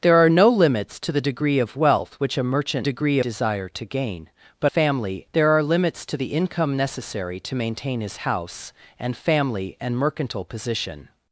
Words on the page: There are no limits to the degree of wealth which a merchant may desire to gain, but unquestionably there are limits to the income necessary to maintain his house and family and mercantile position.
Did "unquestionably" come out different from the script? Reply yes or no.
yes